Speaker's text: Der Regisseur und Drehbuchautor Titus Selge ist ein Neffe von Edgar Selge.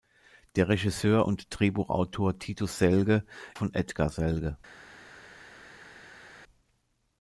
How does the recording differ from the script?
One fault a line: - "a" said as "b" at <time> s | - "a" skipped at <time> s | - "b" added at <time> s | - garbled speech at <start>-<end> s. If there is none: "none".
- "ist ein Neffe" skipped at 3.2 s